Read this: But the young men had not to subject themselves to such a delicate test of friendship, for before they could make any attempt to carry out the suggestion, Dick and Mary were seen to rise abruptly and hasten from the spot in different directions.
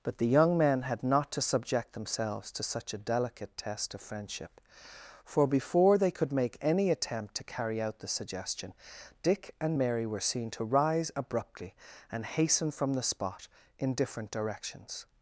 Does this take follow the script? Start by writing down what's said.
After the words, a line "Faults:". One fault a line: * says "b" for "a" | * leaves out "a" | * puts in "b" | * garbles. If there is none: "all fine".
But the young men had not to subject themselves to such a delicate test of friendship, for before they could make any attempt to carry out the suggestion, Dick and Mary were seen to rise abruptly and hasten from the spot in different directions.
Faults:
all fine